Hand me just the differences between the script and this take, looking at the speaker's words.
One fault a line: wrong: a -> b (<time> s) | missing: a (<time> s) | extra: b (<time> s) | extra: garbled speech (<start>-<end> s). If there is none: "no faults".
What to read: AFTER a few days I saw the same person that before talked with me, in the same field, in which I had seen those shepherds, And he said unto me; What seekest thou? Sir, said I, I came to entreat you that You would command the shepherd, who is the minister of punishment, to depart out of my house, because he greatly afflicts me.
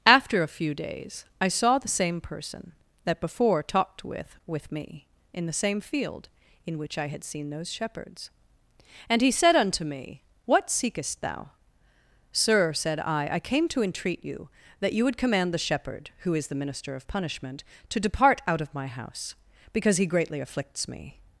extra: with (4.5 s)